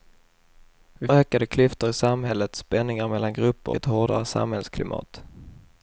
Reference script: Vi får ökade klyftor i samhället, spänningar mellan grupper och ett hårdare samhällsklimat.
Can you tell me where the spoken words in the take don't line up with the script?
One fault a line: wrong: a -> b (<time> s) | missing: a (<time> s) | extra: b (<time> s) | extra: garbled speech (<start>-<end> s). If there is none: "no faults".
missing: får (1.1 s)
missing: och (3.7 s)